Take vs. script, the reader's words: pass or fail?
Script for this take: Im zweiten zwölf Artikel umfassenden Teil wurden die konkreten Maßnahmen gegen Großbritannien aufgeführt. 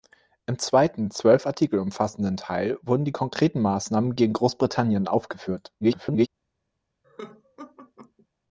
fail